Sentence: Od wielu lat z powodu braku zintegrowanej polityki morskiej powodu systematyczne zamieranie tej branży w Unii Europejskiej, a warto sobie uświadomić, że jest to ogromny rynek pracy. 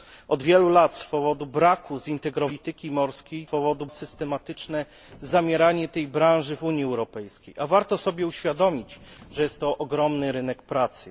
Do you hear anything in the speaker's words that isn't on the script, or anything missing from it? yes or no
no